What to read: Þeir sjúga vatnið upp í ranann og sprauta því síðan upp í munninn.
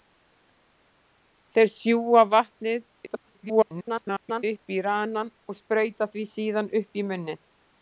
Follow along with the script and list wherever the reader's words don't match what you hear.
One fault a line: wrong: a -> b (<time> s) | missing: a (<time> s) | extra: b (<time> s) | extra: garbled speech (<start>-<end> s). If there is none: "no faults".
extra: garbled speech (3.1-4.4 s)